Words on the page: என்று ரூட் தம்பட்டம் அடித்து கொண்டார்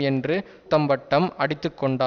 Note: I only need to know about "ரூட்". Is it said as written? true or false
false